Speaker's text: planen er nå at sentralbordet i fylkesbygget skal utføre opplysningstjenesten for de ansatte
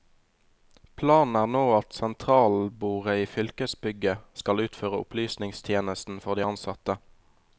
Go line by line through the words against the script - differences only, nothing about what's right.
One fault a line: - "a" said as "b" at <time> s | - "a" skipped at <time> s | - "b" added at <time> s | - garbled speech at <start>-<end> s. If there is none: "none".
none